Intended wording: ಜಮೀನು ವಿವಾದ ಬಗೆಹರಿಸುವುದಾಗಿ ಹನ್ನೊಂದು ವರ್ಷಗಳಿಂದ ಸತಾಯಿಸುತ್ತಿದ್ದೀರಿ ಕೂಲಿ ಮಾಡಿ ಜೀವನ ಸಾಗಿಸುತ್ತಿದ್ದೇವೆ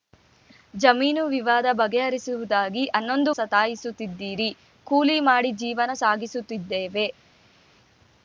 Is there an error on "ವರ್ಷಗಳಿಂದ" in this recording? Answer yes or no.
yes